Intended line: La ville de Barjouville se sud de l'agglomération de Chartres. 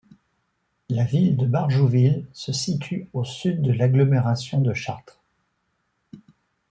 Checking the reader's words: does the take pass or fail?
fail